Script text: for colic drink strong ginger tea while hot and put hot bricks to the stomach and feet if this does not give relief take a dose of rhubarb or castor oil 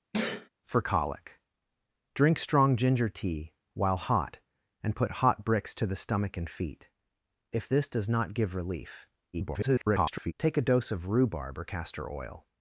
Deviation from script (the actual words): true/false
true